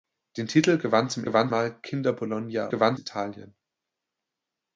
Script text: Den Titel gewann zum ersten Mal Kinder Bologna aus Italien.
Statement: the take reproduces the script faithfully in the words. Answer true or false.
false